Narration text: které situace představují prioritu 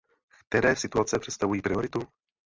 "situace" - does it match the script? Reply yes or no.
yes